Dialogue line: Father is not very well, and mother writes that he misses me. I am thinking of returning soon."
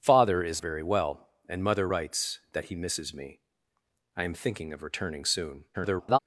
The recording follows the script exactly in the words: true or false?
false